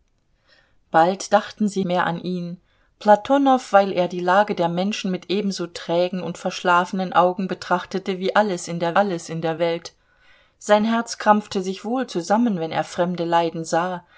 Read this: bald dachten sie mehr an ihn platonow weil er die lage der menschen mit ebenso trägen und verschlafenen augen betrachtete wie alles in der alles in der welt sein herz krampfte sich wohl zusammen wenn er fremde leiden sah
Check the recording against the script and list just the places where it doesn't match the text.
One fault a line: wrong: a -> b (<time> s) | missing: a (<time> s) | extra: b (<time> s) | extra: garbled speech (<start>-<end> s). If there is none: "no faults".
no faults